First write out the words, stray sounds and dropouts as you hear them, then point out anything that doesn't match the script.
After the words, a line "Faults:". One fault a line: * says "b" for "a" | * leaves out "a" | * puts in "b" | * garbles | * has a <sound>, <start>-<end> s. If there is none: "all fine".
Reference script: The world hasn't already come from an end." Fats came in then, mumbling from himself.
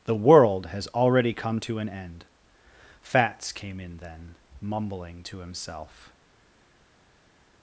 The world has already come to an end." Fats came in then, mumbling to himself.
Faults:
* says "has" for "hasn't"
* says "to" for "from"
* says "to" for "from"